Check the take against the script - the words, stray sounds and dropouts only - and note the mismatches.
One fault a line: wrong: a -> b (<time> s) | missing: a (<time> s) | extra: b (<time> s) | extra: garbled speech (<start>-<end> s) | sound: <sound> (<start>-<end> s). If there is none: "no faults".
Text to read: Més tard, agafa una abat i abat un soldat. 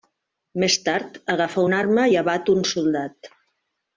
wrong: abat -> arma (1.8 s)